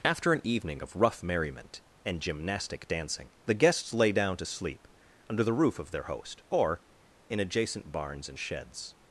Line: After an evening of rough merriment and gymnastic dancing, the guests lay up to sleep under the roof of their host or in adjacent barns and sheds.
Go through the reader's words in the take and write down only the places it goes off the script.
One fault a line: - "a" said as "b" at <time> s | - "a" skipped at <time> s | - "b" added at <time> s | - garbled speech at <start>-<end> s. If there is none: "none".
- "up" said as "down" at 4.1 s